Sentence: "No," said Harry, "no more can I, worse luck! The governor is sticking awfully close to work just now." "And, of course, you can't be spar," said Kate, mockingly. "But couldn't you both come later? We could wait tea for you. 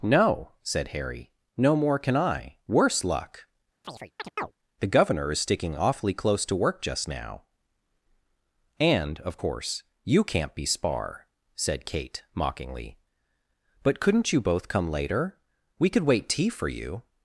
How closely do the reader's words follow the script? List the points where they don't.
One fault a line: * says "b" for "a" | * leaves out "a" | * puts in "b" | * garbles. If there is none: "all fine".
all fine